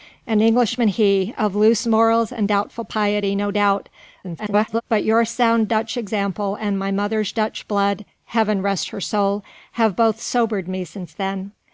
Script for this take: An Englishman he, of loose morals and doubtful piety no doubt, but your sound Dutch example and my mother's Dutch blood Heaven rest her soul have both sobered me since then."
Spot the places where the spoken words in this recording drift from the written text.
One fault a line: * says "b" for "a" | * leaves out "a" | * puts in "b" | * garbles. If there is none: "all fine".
* garbles